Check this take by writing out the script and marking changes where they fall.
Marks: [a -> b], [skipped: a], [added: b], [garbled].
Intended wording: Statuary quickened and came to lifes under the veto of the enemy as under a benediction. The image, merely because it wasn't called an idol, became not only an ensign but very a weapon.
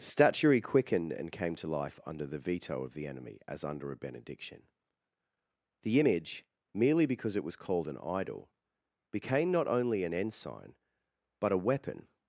Statuary quickened and came to [lifes -> life] under the veto of the enemy as under a benediction. The image, merely because it [wasn't -> was] called an idol, became not only an ensign but [skipped: very] a weapon.